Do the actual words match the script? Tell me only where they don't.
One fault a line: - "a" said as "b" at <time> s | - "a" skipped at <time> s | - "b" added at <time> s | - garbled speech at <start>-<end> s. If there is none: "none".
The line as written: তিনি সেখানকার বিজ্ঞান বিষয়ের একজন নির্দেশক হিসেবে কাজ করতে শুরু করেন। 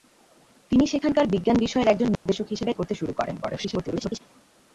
- "কাজ" skipped at 2.7 s
- garbled speech at 3.4-4.2 s